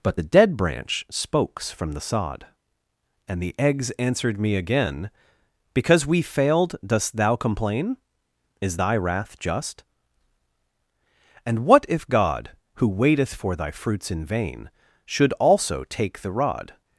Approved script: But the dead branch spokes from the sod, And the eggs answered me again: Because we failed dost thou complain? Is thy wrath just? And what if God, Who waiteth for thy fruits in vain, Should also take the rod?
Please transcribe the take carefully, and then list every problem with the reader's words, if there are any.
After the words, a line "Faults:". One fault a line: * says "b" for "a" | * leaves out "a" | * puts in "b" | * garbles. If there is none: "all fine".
But the dead branch spokes from the sod, And the eggs answered me again: Because we failed dost thou complain? Is thy wrath just? And what if God, Who waiteth for thy fruits in vain, Should also take the rod?
Faults:
all fine